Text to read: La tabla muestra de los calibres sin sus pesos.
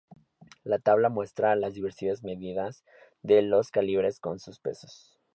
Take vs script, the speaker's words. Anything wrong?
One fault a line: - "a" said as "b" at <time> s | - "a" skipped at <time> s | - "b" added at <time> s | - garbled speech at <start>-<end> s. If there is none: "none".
- "las diversas medidas" added at 1.6 s
- "sin" said as "con" at 4.2 s